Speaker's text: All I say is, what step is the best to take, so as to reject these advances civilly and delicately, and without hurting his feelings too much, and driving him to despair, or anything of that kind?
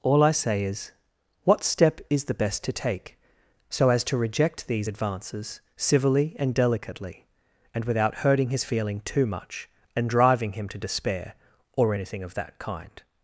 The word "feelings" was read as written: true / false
false